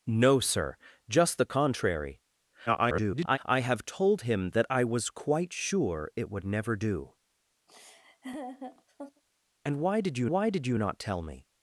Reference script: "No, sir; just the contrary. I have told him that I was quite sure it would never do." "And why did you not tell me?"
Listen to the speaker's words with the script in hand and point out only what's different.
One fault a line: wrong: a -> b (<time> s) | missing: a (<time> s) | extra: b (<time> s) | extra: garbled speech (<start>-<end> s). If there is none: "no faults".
extra: garbled speech (2.7-3.4 s)
extra: why did you (10.3 s)